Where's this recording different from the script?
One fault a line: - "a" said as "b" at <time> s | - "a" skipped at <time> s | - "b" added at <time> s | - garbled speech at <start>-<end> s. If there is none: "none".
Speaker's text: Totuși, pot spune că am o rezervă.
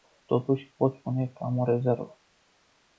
none